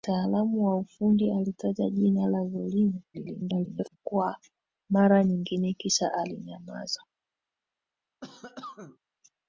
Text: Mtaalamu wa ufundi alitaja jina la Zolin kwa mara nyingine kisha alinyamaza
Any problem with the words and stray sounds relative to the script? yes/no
yes